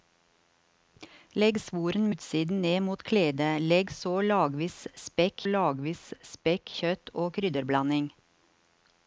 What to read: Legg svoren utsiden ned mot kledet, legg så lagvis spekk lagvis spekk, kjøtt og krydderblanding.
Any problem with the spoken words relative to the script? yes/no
no